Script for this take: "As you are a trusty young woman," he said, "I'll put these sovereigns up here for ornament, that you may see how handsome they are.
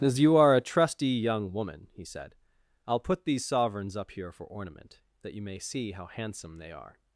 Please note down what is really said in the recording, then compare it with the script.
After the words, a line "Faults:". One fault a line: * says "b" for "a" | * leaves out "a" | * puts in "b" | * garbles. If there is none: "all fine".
"As you are a trusty young woman," he said, "I'll put these sovereigns up here for ornament, that you may see how handsome they are.
Faults:
all fine